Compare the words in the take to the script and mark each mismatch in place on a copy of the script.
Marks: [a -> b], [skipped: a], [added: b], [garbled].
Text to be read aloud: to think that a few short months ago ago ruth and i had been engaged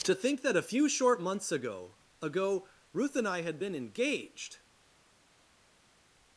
to think that a few short months ago ago ruth and i had been engaged